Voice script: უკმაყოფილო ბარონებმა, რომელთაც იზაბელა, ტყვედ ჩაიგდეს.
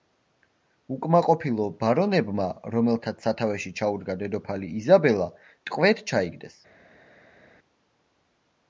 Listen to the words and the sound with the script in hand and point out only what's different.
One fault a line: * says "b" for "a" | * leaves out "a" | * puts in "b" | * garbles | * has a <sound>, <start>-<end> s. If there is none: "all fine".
* puts in "სათავეში ჩაუდგა დედოფალი"